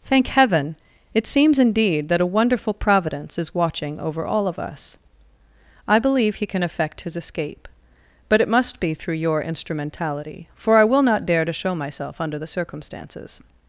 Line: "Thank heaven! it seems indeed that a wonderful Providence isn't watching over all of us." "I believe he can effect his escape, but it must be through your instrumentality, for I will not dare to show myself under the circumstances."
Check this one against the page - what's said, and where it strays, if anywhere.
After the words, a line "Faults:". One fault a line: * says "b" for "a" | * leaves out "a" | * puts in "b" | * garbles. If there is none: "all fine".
"Thank heaven! it seems indeed that a wonderful Providence is watching over all of us." "I believe he can effect his escape, but it must be through your instrumentality, for I will not dare to show myself under the circumstances."
Faults:
* says "is" for "isn't"